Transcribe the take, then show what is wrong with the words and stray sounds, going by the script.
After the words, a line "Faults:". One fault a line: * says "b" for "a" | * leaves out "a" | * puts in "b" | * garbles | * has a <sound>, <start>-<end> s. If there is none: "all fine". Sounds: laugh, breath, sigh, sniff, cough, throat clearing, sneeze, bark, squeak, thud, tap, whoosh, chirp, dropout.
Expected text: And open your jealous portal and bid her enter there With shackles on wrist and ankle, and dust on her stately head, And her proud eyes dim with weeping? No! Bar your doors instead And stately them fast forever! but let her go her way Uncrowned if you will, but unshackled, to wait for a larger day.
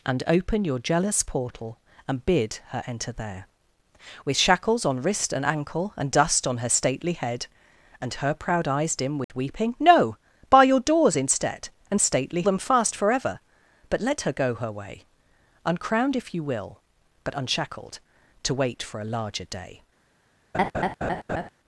And open your jealous portal and bid her enter there With shackles on wrist and ankle, and dust on her stately head, And her proud eyes dim with weeping? No! Bar your doors instead And stately them fast forever! but let her go her way Uncrowned if you will, but unshackled, to wait for a larger day.
Faults:
* has a dropout, 9.2-9.3 s
* has a laugh, 20.5-21.5 s